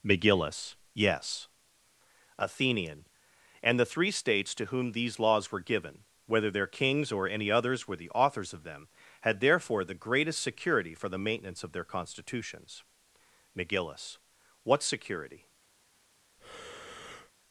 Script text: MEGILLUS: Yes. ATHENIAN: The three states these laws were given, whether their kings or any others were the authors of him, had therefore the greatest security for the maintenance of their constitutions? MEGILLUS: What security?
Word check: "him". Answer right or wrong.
wrong